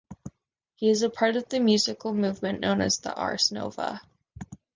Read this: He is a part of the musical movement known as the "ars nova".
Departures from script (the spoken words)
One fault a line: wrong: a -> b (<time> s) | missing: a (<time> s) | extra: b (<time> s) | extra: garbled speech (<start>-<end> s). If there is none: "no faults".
no faults